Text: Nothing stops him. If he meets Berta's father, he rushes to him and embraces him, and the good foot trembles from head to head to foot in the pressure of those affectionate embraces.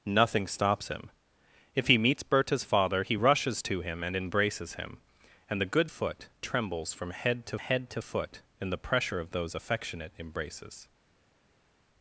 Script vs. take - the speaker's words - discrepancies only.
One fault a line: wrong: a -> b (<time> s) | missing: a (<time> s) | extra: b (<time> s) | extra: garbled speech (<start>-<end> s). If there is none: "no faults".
no faults